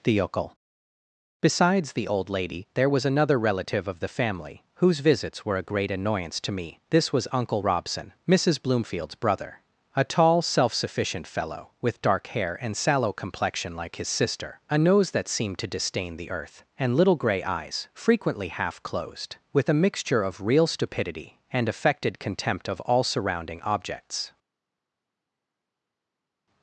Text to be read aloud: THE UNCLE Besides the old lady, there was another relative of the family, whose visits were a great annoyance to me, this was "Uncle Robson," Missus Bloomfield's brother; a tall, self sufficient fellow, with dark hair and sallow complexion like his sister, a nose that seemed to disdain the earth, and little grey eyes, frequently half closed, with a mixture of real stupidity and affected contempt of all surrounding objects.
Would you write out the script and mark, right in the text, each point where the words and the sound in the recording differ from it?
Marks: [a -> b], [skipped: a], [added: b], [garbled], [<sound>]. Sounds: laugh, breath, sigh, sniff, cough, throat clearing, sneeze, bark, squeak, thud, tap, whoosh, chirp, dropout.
THE UNCLE Besides the old lady, there was another relative of the family, whose visits were a great annoyance to me, this was "Uncle Robson," Missus Bloomfield's brother; a tall, self sufficient fellow, with dark hair and sallow complexion like his sister, a nose that seemed to disdain the earth, and little grey eyes, frequently half closed, with a mixture of real stupidity and affected contempt of all surrounding objects.